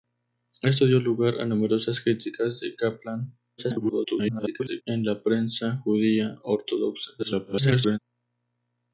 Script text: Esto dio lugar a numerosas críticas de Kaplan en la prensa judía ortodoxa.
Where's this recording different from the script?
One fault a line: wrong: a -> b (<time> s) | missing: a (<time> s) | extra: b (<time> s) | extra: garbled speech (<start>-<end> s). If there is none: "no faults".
extra: garbled speech (3.6-4.8 s)
extra: garbled speech (7.2-8.0 s)